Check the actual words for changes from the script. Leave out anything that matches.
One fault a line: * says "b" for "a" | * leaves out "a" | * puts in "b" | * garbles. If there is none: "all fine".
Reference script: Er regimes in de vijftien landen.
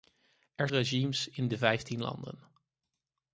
all fine